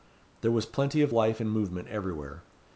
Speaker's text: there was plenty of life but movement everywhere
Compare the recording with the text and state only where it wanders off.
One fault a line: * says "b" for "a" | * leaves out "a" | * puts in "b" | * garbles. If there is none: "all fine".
* says "and" for "but"